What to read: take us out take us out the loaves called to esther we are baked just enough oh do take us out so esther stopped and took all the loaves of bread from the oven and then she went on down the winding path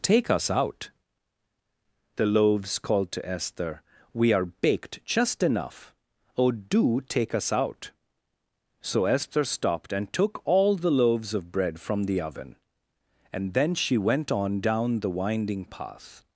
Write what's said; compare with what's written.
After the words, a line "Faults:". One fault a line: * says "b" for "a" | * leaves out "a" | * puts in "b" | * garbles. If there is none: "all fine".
take us out the loaves called to esther we are baked just enough oh do take us out so esther stopped and took all the loaves of bread from the oven and then she went on down the winding path
Faults:
* leaves out "take us out"